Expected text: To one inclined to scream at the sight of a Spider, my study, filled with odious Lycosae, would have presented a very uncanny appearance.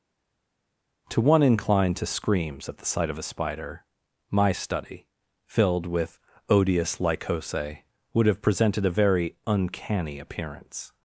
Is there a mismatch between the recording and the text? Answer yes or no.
yes